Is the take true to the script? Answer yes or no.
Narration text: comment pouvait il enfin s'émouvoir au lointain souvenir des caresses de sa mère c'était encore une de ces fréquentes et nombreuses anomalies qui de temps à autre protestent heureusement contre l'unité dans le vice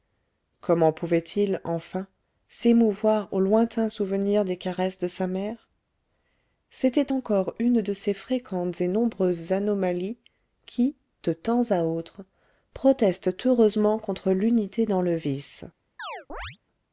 yes